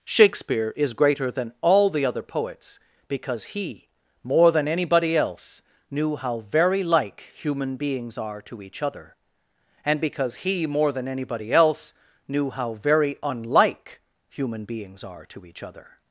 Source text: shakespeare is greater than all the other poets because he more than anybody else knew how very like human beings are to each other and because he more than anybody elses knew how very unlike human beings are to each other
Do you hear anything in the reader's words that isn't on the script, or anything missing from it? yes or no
yes